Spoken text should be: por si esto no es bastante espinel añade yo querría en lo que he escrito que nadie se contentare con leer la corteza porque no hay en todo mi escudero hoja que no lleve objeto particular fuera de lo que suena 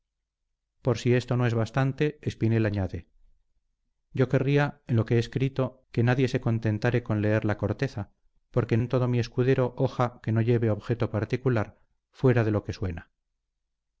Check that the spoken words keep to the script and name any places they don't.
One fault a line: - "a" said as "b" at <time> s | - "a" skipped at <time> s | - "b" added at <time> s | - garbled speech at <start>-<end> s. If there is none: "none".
- "no hay" skipped at 8.8 s